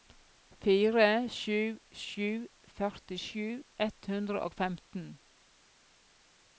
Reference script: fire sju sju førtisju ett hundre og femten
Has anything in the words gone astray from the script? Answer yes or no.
no